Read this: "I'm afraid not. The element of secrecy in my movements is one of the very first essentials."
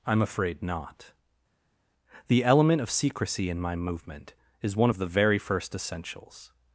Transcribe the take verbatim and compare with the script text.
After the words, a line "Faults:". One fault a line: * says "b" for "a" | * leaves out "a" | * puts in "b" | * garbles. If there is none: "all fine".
"I'm afraid not. The element of secrecy in my movement is one of the very first essentials."
Faults:
* says "movement" for "movements"